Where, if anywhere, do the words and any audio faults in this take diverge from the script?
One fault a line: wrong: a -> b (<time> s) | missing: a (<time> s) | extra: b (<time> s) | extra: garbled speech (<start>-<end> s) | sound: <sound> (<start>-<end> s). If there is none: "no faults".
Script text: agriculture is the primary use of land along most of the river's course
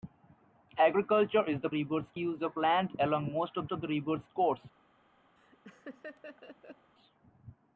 wrong: primary -> river's (1.7 s)
extra: of (3.7 s)
sound: laugh (5.4-6.9 s)